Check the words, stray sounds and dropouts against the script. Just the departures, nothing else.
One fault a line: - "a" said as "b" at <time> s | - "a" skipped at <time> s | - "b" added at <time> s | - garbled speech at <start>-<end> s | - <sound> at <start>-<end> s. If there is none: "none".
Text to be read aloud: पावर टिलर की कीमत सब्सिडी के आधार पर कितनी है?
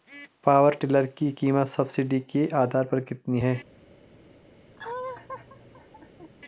- laugh at 4.8-6.3 s